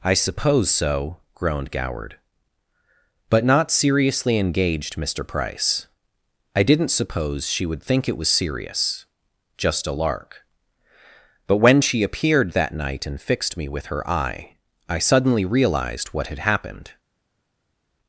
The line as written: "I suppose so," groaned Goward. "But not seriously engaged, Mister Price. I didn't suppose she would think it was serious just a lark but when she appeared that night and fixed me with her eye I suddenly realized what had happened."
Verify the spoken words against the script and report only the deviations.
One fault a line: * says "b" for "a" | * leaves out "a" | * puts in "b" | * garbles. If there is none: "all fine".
all fine